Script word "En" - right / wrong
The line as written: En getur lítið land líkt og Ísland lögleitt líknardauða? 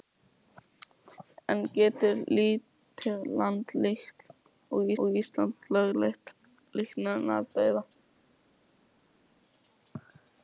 right